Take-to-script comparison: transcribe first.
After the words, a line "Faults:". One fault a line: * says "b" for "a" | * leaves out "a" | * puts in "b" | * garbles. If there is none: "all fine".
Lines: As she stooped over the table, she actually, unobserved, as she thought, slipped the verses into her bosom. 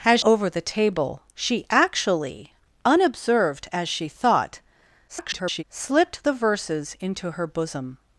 As over the table, she actually, unobserved, as she thought, [garbled] slipped the verses into her bosom.
Faults:
* leaves out "she stooped"
* garbles